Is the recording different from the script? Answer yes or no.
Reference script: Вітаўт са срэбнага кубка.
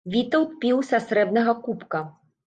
yes